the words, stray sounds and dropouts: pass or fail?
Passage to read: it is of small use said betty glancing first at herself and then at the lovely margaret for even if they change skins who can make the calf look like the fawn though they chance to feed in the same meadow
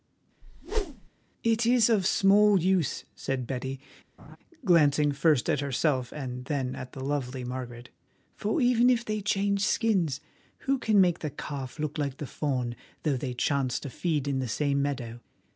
fail